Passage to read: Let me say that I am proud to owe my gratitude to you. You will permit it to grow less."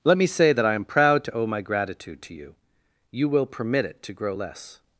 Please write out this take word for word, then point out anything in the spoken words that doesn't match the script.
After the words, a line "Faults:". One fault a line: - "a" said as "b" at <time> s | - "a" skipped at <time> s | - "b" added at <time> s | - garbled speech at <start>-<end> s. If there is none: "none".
Let me say that I am proud to owe my gratitude to you. You will permit it to grow less."
Faults:
none